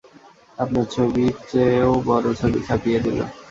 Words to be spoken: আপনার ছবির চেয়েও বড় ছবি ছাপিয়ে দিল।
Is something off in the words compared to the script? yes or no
no